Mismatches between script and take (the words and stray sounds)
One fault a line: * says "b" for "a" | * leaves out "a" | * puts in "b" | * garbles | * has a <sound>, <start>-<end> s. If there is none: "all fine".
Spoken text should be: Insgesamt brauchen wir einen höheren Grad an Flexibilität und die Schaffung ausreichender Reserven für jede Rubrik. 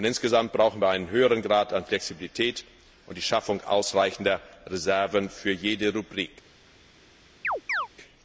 * has a chirp, 7.4-7.9 s